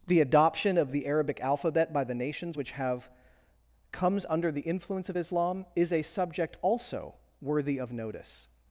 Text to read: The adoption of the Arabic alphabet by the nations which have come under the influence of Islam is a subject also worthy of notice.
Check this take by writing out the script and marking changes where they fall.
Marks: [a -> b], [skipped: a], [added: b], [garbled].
The adoption of the Arabic alphabet by the nations which have [come -> comes] under the influence of Islam is a subject also worthy of notice.